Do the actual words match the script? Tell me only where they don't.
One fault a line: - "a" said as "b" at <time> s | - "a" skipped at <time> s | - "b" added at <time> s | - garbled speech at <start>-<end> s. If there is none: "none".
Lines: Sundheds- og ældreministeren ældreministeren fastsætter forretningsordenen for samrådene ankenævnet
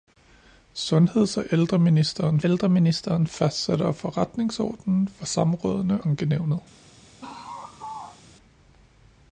none